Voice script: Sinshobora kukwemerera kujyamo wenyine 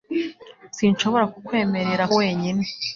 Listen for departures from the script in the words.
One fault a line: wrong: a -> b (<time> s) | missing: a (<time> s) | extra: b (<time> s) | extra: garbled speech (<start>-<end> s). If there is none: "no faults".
missing: kujyamo (2.0 s)